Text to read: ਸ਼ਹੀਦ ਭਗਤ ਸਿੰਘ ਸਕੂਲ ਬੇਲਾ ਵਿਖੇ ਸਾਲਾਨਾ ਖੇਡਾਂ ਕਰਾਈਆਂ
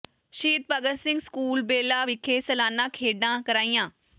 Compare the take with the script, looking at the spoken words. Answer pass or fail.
pass